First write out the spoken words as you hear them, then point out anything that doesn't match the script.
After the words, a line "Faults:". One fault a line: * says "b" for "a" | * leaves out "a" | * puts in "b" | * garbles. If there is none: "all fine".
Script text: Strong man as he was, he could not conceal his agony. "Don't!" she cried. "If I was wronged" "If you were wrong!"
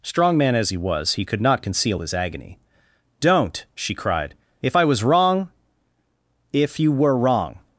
Strong man as he was, he could not conceal his agony. "Don't!" she cried. "If I was wrong" "If you were wrong!"
Faults:
* says "wrong" for "wronged"